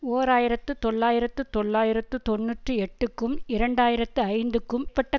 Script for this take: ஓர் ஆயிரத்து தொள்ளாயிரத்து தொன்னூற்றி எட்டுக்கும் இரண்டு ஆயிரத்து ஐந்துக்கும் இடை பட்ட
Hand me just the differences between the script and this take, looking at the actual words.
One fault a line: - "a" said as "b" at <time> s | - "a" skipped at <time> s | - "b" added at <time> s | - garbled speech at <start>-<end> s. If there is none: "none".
- "தொள்ளாயிரத்து" added at 1.5 s
- "இடை" skipped at 4.9 s